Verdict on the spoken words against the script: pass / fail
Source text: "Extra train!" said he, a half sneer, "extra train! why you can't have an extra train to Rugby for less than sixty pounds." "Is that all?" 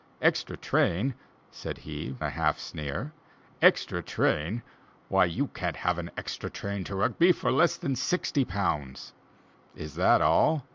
pass